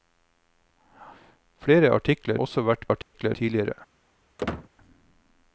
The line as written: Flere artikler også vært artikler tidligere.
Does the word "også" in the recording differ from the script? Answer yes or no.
no